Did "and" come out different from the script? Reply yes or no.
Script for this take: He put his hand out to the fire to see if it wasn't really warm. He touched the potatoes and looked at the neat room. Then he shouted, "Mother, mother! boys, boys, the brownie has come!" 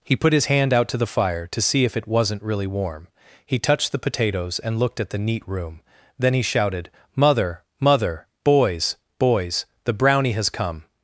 no